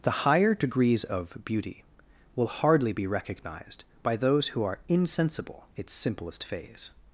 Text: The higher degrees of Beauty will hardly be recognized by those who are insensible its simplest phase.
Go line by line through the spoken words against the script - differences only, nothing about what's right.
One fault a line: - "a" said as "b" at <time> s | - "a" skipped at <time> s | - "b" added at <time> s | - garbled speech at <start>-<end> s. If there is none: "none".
none